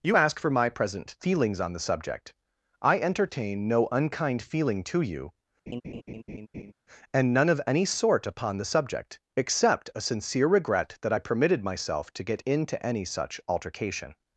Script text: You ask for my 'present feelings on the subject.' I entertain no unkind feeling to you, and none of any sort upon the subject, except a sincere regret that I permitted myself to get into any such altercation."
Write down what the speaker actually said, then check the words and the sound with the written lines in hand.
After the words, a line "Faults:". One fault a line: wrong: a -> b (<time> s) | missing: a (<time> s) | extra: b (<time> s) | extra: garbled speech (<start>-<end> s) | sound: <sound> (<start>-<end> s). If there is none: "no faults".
You ask for my 'present feelings on the subject.' I entertain no unkind feeling to you, and none of any sort upon the subject, except a sincere regret that I permitted myself to get into any such altercation."
Faults:
sound: laugh (5.7-6.7 s)